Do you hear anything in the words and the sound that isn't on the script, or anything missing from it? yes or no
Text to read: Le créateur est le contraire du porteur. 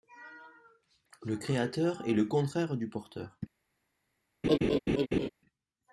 yes